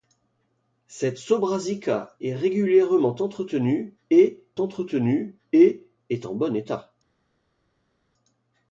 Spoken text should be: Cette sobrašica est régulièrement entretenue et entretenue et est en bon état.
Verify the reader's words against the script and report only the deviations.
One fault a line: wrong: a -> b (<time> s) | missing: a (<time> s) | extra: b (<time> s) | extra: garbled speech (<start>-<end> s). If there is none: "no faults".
no faults